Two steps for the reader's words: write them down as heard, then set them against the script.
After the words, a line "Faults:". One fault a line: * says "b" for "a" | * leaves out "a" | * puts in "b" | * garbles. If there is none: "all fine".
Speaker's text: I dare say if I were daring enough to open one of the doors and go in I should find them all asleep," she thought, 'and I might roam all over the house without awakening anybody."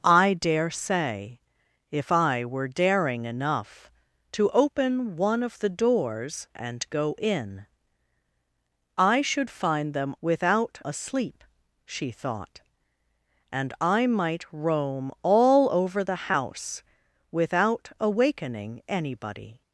I dare say if I were daring enough to open one of the doors and go in I should find them without asleep," she thought, 'and I might roam all over the house without awakening anybody."
Faults:
* says "without" for "all"